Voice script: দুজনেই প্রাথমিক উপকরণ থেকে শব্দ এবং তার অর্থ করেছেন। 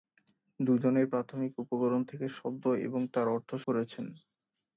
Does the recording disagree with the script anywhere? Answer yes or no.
no